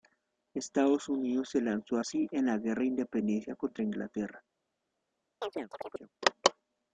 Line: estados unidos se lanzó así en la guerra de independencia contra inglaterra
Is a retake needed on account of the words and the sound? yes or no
yes